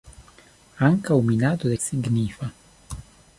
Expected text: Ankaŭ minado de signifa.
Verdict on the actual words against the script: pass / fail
pass